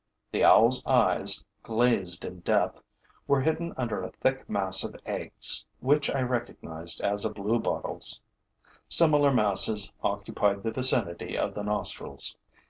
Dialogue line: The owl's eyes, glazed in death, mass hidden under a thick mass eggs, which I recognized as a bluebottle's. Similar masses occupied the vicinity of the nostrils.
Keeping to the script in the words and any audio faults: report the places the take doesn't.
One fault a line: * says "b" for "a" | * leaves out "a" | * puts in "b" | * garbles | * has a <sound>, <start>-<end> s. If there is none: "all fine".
* says "were" for "mass"
* puts in "of"